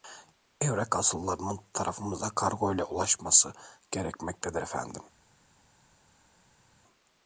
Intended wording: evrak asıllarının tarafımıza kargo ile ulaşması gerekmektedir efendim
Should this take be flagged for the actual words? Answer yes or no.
no